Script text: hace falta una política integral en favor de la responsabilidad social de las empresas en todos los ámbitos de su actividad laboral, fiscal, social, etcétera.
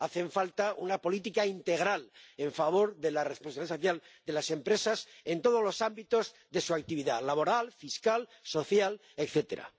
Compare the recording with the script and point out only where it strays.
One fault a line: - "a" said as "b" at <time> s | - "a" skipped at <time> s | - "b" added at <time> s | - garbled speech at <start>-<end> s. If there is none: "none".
none